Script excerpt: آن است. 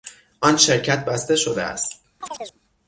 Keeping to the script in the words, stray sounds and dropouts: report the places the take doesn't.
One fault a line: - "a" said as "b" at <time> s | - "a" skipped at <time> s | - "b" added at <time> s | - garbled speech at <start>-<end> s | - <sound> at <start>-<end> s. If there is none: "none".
- "شرکت بسته شده" added at 0.6 s
- chirp at 2.2-2.6 s